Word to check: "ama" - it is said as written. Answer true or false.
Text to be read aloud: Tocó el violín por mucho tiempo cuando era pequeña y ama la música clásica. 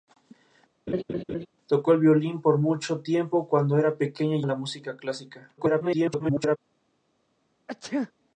false